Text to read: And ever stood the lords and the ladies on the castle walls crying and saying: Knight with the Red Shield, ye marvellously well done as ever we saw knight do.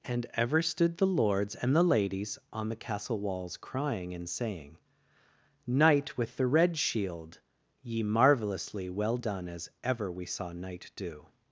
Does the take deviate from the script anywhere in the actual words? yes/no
no